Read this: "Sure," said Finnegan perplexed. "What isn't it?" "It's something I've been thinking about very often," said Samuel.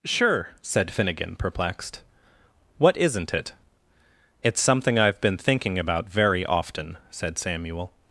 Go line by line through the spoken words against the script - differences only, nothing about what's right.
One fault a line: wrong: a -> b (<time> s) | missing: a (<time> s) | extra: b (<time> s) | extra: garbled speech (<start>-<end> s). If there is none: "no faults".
no faults